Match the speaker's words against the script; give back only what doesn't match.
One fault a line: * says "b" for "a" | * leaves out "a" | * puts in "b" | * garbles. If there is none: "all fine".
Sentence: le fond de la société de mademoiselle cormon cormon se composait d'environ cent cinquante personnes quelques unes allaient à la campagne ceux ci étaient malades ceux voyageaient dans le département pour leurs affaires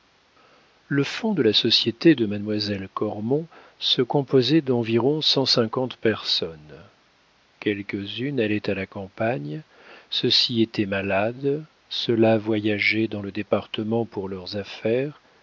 * leaves out "cormon"
* puts in "là"